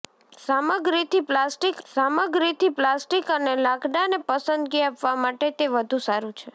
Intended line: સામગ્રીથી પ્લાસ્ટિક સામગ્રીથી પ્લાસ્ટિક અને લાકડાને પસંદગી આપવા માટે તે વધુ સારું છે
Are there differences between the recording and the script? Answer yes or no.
no